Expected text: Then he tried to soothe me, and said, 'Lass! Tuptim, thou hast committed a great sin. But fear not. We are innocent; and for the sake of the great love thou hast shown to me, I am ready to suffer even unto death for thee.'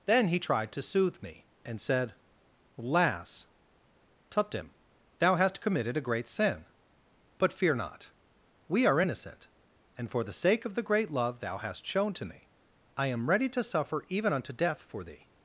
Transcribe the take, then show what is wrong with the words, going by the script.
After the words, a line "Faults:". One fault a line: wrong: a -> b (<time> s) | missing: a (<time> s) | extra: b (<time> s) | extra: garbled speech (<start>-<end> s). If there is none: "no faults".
Then he tried to soothe me, and said, 'Lass! Tuptim, thou hast committed a great sin. But fear not. We are innocent; and for the sake of the great love thou hast shown to me, I am ready to suffer even unto death for thee.'
Faults:
no faults